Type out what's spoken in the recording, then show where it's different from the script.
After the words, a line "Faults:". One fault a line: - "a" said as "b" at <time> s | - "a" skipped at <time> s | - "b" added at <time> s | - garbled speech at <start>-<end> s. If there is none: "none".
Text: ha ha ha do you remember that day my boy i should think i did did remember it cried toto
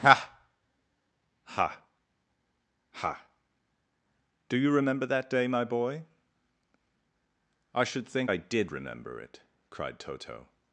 ha ha ha do you remember that day my boy i should think i did remember it cried toto
Faults:
- "did" skipped at 8.7 s